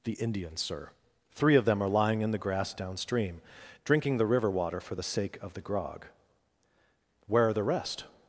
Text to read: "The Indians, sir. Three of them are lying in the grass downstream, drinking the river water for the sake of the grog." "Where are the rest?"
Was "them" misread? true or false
false